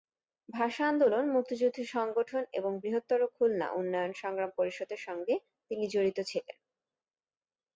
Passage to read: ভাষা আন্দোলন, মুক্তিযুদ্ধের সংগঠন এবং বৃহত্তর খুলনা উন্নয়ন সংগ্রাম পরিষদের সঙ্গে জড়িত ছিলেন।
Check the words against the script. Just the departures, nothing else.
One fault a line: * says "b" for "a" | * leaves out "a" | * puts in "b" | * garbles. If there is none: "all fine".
* puts in "তিনি"